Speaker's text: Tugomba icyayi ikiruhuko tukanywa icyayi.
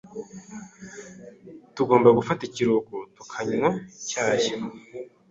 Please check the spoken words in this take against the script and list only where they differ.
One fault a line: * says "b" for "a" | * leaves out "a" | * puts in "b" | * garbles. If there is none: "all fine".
* says "gufata" for "icyayi"